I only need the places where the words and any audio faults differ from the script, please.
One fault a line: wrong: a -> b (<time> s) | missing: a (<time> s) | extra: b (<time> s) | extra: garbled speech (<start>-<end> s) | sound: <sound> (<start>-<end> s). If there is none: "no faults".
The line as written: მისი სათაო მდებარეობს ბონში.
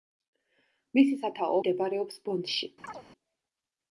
sound: chirp (2.8-3.0 s)